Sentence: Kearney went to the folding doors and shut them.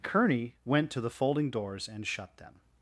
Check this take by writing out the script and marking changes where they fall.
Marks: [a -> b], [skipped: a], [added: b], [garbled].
Kearney went to the folding doors and shut them.